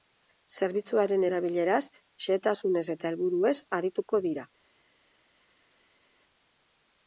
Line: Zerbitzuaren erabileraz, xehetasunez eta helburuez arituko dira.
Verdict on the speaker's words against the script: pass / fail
pass